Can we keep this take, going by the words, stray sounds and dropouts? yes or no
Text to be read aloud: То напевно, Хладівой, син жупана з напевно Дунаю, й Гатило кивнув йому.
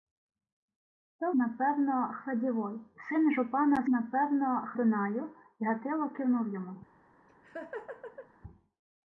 no